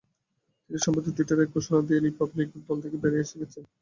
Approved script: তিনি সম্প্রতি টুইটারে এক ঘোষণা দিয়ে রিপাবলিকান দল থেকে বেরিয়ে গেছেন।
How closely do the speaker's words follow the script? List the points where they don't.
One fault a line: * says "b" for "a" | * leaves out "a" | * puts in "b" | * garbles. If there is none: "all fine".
all fine